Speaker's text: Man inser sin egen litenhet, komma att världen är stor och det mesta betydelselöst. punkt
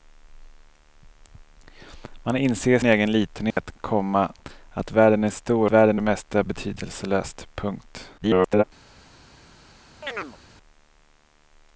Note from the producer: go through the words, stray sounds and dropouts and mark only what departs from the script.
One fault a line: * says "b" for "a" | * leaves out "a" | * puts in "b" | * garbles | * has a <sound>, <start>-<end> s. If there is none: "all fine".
* leaves out "sin"
* has a dropout, 3.5-3.6 s
* says "världen" for "och"
* garbles
* has a chirp, 10.0-10.4 s